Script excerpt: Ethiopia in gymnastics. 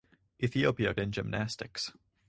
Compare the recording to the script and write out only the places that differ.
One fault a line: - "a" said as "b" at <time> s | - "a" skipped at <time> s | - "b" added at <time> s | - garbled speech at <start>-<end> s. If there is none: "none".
none